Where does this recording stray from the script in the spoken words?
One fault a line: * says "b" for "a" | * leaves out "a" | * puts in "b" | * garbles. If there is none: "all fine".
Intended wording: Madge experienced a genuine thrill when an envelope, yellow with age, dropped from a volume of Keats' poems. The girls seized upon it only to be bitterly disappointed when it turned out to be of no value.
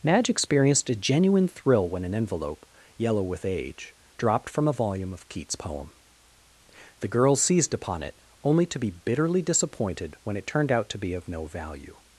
* says "poem" for "poems"